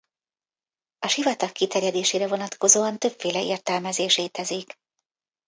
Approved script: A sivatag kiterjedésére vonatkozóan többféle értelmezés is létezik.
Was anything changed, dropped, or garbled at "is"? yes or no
yes